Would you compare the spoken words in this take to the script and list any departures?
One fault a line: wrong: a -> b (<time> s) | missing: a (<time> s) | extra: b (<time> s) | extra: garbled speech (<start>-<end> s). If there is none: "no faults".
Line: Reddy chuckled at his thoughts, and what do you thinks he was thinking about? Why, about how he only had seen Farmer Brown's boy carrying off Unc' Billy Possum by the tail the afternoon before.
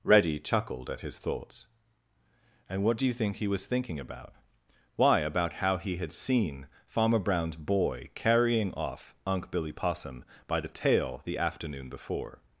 wrong: thinks -> think (3.1 s)
missing: only (6.0 s)